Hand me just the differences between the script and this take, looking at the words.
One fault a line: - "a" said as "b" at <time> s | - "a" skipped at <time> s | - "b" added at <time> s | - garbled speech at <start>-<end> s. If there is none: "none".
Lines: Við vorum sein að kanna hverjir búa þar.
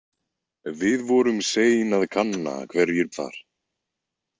- "búa" skipped at 3.1 s